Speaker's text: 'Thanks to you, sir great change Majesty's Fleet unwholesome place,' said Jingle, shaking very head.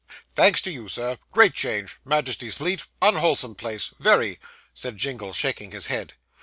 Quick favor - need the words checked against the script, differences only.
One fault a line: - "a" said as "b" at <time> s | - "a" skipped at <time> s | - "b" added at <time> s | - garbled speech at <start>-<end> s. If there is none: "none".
- "very" added at 4.0 s
- "very" said as "his" at 5.7 s